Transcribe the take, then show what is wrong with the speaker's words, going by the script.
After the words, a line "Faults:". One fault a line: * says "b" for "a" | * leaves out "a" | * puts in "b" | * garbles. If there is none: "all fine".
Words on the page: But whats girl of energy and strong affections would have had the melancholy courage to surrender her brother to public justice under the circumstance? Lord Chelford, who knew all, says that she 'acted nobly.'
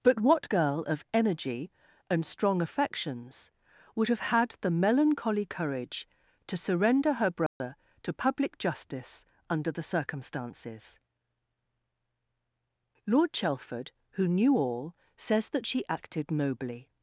But what girl of energy and strong affections would have had the melancholy courage to surrender her brother to public justice under the circumstances? Lord Chelford, who knew all, says that she 'acted nobly.'
Faults:
* says "what" for "whats"
* says "circumstances" for "circumstance"